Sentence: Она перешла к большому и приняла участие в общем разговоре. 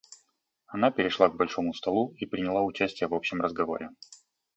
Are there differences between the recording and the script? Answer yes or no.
yes